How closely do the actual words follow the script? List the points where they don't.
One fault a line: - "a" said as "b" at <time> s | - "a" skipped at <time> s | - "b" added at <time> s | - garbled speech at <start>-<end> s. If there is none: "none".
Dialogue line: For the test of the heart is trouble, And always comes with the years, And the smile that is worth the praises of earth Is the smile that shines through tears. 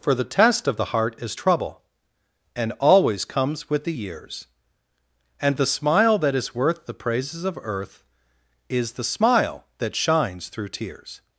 none